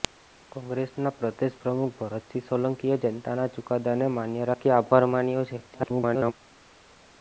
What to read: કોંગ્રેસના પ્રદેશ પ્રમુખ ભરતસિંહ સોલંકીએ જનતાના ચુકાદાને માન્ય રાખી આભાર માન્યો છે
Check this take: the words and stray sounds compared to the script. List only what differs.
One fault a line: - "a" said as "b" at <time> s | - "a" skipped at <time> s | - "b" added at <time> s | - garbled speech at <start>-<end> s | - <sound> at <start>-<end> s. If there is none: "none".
- garbled speech at 5.7-6.3 s